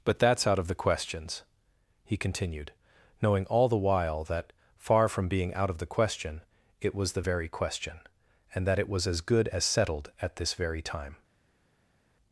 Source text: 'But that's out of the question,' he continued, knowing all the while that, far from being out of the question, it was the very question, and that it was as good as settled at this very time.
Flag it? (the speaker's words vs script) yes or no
yes